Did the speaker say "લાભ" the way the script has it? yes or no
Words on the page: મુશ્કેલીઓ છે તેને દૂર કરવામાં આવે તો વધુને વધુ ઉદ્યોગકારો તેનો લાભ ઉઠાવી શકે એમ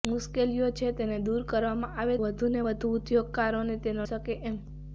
no